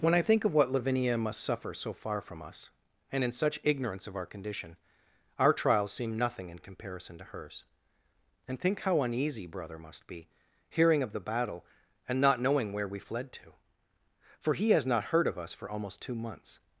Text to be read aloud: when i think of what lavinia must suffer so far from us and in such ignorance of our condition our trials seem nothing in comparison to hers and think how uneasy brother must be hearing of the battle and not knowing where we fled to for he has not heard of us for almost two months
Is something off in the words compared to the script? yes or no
no